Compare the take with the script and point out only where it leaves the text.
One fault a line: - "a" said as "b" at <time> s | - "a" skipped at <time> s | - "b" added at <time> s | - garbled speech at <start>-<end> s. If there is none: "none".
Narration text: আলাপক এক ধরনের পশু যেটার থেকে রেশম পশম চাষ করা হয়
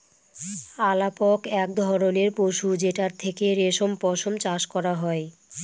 none